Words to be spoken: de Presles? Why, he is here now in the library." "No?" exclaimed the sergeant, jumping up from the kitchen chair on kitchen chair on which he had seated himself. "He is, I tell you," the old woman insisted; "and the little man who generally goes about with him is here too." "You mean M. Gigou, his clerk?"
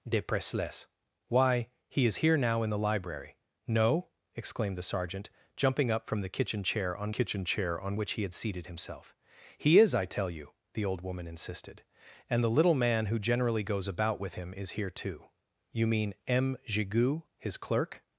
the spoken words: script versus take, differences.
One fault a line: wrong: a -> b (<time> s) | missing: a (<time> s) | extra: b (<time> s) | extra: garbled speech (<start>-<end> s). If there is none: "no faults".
no faults